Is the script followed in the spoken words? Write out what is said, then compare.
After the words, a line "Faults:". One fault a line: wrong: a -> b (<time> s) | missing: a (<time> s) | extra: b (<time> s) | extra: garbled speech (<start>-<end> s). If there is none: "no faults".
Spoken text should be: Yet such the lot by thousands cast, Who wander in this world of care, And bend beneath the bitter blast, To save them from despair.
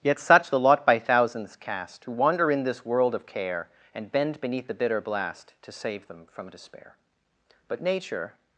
Yet such the lot by thousands cast, Who wander in this world of care, And bend beneath the bitter blast, To save them from despair. But Nature
Faults:
extra: But Nature (7.7 s)